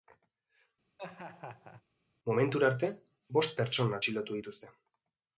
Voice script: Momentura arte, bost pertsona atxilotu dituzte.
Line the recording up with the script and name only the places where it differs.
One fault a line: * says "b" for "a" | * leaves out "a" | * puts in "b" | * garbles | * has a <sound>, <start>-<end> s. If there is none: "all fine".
* has a laugh, 1.0-1.8 s